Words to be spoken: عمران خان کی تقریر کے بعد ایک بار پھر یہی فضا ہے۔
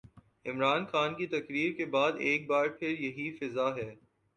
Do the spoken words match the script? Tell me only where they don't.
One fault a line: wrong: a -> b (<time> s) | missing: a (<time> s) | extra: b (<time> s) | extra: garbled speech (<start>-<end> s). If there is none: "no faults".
no faults